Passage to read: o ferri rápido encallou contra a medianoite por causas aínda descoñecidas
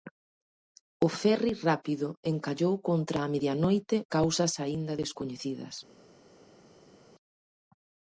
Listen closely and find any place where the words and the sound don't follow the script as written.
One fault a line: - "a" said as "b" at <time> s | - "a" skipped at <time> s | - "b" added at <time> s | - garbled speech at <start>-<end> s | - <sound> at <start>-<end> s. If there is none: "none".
- "por" skipped at 4.0 s